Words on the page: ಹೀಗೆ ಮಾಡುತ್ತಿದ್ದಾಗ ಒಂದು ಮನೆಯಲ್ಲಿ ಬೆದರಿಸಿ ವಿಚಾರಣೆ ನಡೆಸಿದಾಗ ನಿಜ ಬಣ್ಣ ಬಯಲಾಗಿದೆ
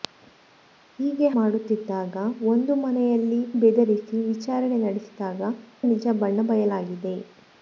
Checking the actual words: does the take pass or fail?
pass